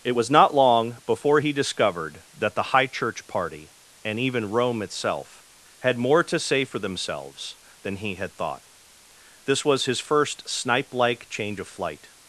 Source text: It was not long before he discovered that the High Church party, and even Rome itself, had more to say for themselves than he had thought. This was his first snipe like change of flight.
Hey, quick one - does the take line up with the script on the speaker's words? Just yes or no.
yes